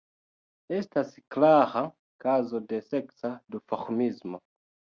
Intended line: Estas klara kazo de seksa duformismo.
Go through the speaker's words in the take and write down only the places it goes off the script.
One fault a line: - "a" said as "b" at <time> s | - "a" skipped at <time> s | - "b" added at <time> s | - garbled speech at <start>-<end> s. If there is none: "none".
none